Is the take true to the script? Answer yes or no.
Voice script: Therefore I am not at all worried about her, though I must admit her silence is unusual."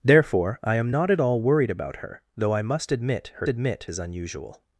no